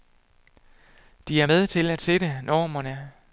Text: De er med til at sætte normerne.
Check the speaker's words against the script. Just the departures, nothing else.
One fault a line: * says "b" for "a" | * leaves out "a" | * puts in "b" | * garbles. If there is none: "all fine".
all fine